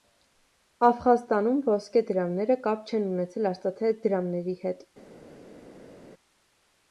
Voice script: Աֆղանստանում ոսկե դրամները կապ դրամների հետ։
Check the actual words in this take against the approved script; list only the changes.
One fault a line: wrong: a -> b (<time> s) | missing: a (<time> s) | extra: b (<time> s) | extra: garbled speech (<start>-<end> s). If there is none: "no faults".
extra: չեն ունեցել արծաթե (2.9 s)